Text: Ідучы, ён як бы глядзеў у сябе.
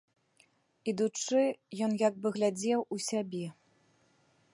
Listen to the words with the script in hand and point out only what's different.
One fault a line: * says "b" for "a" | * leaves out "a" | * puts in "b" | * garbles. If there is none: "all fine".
all fine